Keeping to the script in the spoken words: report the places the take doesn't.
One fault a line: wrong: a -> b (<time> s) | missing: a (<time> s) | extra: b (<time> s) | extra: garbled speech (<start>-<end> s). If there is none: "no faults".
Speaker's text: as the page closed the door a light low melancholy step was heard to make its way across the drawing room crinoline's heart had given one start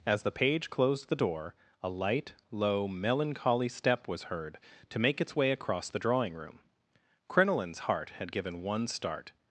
no faults